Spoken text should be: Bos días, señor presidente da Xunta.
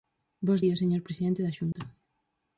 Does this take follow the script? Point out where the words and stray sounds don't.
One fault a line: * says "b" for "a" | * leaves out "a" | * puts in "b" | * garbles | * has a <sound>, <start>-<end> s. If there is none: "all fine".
* has a dropout, 1.7-1.8 s